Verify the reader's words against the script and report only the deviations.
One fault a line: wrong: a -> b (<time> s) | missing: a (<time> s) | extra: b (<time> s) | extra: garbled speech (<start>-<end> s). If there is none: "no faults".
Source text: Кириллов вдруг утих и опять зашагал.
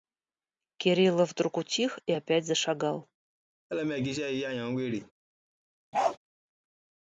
no faults